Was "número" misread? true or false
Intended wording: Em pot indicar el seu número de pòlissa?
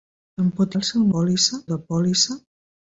true